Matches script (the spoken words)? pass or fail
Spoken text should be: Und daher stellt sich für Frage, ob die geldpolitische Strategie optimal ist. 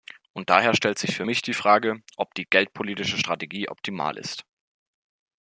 fail